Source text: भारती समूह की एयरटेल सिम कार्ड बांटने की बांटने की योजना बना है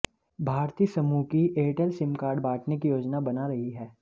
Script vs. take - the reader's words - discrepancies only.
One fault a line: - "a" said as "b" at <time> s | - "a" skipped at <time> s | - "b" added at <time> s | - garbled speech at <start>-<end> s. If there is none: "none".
- "बांटने की" skipped at 2.9 s
- "रही" added at 3.5 s